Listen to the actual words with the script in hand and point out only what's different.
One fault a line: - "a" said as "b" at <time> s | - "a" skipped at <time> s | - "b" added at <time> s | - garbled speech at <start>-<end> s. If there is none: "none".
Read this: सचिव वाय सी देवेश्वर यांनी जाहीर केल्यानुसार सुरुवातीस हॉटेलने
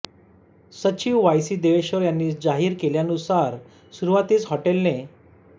none